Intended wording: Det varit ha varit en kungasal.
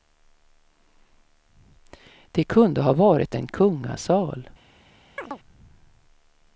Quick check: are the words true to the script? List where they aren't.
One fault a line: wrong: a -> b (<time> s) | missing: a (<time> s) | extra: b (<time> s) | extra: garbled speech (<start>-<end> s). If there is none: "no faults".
wrong: varit -> kunde (2.4 s)